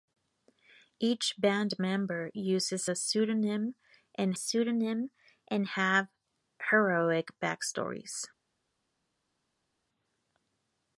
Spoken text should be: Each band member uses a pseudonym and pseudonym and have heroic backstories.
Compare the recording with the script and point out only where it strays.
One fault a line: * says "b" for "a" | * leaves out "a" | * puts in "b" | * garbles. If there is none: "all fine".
all fine